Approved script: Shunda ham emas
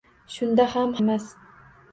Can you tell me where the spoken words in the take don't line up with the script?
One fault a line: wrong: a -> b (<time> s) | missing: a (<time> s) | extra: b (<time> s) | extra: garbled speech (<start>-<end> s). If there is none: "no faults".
no faults